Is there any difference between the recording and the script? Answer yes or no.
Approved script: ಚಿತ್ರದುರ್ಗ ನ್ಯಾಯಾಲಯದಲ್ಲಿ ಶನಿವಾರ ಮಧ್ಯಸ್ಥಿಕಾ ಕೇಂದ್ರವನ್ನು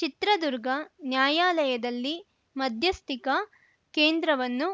yes